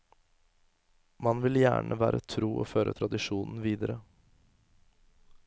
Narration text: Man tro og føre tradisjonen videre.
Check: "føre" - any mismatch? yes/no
no